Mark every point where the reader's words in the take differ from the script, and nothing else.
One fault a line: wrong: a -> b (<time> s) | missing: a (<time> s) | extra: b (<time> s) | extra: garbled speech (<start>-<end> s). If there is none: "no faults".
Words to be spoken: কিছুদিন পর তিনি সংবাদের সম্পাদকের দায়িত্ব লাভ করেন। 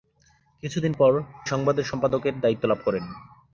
missing: তিনি (1.1 s)